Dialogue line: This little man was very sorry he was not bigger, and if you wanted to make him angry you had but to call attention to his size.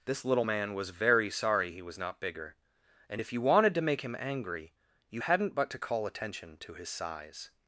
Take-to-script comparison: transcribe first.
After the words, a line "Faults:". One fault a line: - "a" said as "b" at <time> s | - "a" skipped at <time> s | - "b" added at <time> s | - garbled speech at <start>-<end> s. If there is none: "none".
This little man was very sorry he was not bigger, and if you wanted to make him angry you hadn't but to call attention to his size.
Faults:
- "had" said as "hadn't" at 5.2 s